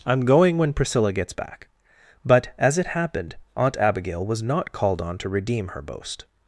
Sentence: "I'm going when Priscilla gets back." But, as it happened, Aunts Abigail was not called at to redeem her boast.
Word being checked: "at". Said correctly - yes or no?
no